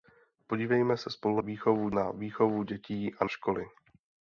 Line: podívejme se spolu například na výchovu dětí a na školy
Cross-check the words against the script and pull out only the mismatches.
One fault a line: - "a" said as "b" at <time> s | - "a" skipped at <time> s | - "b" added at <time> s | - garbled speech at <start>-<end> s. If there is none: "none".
- "například" said as "výchovu" at 1.4 s
- "na" skipped at 3.2 s